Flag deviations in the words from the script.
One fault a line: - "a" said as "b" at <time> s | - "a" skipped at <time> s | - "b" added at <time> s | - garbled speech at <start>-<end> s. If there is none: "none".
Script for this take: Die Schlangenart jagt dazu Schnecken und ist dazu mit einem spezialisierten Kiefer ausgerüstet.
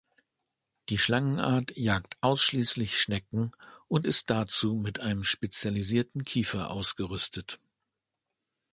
- "dazu" said as "ausschließlich" at 2.2 s